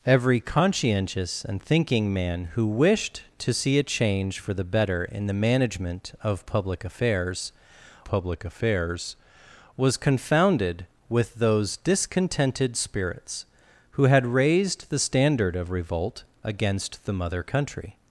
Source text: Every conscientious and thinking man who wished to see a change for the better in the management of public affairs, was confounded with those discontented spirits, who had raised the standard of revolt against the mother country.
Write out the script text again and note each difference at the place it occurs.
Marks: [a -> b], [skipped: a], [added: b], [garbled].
Every conscientious and thinking man who wished to see a change for the better in the management of public affairs, [added: public affairs] was confounded with those discontented spirits, who had raised the standard of revolt against the mother country.